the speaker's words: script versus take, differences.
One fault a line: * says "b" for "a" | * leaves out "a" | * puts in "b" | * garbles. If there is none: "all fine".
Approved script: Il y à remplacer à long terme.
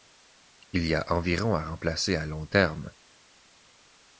* puts in "a environ"